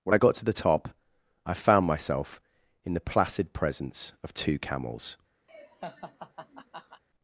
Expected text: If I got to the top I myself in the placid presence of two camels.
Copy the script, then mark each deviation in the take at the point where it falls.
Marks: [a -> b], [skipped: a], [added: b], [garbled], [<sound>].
[If -> When] I got to the top I [added: found] myself in the placid presence of two camels. [laugh]